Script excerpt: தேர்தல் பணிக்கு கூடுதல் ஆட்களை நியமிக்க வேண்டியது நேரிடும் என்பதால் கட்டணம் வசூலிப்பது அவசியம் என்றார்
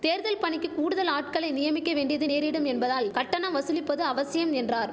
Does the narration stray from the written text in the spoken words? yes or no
no